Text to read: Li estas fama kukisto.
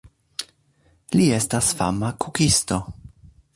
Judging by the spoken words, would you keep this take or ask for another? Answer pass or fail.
pass